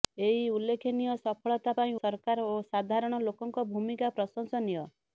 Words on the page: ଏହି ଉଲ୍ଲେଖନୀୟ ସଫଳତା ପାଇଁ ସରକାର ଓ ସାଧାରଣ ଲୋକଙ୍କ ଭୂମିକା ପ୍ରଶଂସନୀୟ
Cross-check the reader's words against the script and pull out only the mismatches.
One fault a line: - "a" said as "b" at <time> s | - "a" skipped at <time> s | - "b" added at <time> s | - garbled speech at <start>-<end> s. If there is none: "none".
none